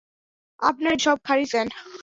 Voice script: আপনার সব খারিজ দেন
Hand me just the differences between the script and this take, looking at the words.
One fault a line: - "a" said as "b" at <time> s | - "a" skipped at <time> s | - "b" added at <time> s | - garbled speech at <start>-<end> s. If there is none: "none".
none